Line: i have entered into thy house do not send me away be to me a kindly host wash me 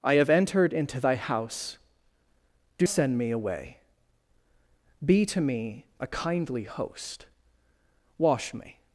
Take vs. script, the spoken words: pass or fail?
fail